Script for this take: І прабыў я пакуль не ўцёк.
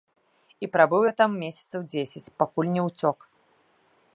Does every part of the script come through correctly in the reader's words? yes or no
no